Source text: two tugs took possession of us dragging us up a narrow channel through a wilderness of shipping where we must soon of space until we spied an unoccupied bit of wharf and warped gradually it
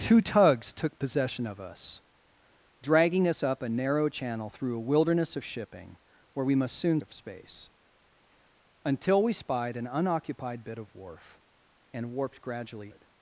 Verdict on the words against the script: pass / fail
pass